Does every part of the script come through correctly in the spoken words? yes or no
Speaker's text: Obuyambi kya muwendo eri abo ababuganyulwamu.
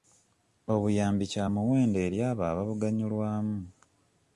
yes